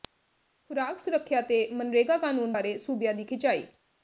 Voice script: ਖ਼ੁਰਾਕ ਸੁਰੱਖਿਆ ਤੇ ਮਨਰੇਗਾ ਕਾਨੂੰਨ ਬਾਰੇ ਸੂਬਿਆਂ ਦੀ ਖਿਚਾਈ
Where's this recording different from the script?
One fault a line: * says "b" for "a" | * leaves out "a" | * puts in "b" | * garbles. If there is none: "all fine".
all fine